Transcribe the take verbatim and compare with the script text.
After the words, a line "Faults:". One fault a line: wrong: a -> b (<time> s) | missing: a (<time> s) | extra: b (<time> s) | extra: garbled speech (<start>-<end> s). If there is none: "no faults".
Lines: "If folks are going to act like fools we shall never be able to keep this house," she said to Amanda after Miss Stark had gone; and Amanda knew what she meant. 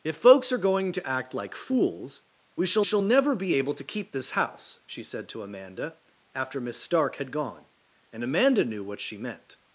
"If folks are going to act like fools we shall shall never be able to keep this house," she said to Amanda after Miss Stark had gone; and Amanda knew what she meant.
Faults:
extra: shall (2.8 s)